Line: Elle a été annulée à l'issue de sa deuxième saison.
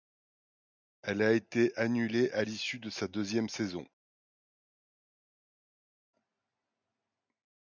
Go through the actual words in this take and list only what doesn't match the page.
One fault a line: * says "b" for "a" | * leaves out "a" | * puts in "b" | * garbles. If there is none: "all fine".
all fine